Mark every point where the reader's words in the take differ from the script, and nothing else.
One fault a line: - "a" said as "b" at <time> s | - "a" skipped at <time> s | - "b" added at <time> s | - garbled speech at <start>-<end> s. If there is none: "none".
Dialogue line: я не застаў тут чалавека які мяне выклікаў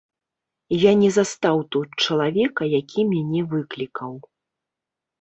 none